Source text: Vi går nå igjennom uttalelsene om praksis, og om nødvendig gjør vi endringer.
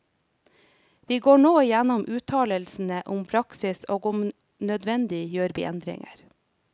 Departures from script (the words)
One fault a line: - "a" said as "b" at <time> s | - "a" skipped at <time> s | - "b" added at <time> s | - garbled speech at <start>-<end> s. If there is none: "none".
none